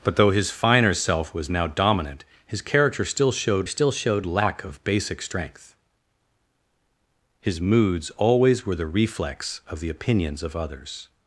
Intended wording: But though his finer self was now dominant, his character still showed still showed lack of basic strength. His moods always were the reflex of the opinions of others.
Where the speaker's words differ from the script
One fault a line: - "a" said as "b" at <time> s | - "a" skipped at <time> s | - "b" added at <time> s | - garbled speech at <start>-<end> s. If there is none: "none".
none